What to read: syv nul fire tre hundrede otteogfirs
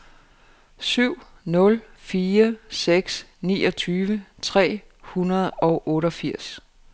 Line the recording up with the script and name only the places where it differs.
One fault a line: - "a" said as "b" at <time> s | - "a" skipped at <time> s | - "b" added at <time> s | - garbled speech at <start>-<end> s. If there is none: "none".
- "seks niogtyve" added at 2.7 s
- "og" added at 5.5 s